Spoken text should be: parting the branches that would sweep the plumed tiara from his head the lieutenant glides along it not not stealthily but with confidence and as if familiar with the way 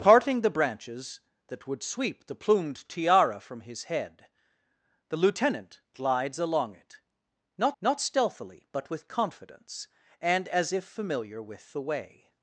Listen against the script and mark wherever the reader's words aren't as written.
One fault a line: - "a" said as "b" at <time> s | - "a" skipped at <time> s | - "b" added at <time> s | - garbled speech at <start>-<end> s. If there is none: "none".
none